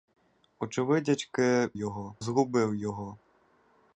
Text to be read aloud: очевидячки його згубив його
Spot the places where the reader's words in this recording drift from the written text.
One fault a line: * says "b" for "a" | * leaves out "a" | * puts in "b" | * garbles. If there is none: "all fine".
all fine